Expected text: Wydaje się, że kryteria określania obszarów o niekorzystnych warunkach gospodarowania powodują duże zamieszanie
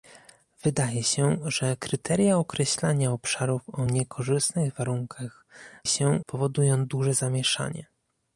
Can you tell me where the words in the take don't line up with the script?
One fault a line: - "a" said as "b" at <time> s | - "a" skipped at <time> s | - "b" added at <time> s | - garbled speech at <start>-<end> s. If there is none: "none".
- "gospodarowania" said as "się" at 5.9 s